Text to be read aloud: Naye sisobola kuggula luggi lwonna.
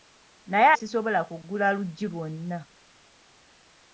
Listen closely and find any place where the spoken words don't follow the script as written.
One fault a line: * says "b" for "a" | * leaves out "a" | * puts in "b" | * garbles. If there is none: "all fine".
all fine